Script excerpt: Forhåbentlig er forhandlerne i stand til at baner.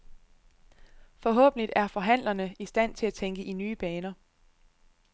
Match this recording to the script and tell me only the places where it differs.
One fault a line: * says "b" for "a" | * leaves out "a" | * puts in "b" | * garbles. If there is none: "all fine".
* puts in "tænke i nye"